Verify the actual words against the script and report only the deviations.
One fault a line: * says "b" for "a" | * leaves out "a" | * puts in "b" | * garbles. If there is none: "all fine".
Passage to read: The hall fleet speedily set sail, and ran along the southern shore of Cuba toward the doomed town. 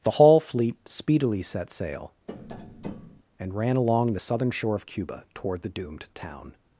all fine